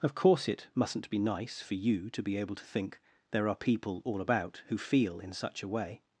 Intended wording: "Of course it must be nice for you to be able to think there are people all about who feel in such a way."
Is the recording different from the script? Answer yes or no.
yes